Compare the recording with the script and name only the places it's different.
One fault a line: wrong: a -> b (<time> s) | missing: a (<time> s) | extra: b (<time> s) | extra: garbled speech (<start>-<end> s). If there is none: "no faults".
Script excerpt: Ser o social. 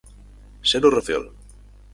no faults